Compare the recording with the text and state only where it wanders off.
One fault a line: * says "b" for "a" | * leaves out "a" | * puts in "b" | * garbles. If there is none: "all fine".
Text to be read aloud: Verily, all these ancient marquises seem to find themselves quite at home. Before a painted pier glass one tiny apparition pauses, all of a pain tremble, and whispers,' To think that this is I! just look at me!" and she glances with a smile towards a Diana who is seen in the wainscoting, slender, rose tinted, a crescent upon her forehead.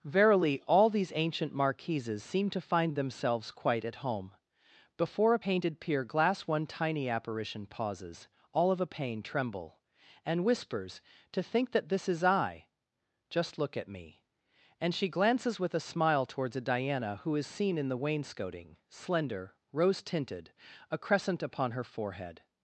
all fine